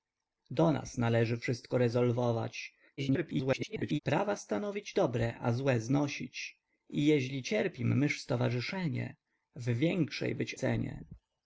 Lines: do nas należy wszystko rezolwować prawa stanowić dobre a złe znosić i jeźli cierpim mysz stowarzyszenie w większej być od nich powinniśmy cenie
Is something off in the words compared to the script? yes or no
yes